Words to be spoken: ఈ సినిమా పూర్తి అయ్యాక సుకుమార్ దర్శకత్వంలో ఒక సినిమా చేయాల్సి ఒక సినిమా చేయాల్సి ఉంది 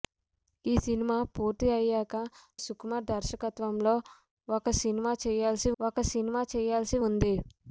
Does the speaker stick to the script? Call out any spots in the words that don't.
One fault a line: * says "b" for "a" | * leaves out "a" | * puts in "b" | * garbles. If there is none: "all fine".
all fine